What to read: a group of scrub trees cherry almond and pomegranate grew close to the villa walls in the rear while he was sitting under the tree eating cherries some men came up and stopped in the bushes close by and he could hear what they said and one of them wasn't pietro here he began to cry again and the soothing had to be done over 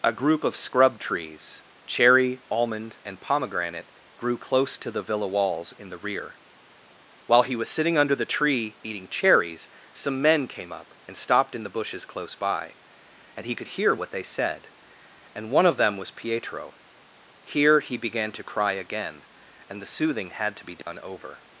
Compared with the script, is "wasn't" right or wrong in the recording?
wrong